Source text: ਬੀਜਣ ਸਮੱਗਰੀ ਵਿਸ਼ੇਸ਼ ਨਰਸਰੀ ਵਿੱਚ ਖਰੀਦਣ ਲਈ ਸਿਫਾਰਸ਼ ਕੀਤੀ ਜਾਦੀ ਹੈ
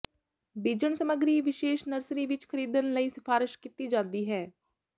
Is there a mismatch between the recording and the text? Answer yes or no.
no